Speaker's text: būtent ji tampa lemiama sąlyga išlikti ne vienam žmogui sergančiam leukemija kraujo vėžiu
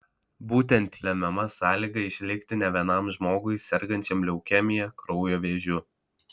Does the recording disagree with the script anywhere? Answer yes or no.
yes